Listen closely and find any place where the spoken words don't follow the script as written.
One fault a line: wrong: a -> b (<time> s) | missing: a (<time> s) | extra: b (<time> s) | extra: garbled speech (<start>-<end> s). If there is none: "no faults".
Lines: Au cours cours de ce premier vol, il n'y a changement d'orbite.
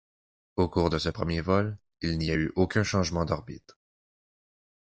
missing: cours (0.9 s)
extra: eu aucun (2.3 s)